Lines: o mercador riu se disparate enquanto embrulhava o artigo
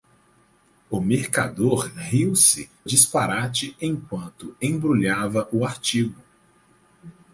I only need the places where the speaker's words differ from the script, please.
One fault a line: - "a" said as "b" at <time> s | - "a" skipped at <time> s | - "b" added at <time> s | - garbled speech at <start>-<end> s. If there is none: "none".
none